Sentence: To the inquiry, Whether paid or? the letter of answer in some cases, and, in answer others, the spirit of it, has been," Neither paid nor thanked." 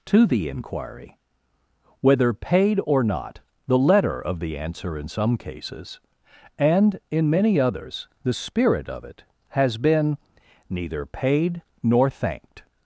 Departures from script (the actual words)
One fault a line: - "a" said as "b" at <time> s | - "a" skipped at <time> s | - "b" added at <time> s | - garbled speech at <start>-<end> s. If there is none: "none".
- "not" added at 3.0 s
- "the" added at 4.4 s
- "answer" said as "many" at 7.3 s